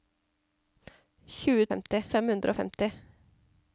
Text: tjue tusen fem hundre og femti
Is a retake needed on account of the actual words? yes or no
yes